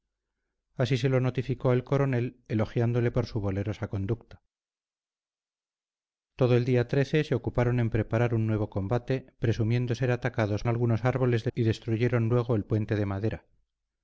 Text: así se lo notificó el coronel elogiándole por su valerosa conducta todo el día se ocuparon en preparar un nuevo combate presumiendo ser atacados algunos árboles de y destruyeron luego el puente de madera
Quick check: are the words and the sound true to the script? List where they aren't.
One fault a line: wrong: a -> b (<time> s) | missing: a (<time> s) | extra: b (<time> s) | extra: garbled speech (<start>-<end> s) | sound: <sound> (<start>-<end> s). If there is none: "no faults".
no faults